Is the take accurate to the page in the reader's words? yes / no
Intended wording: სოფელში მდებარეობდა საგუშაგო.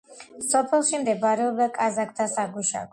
no